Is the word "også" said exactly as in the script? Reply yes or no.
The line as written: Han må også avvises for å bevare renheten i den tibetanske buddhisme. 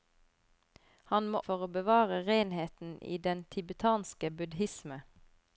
no